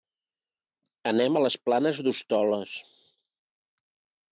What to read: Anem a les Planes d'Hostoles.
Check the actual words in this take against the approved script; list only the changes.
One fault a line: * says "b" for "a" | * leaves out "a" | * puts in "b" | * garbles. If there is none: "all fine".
all fine